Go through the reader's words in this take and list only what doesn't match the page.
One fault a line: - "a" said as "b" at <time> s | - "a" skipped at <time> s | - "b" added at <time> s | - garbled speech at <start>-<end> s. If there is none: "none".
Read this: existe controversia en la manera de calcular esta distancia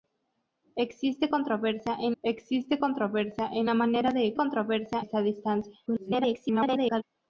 - "existe controversia en" added at 2.2 s
- "calcular" said as "controversia" at 4.4 s
- garbled speech at 5.9-7.0 s